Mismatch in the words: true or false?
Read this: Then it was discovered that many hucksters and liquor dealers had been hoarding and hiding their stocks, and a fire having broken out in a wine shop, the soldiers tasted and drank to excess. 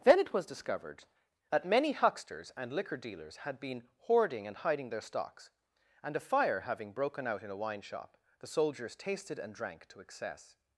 false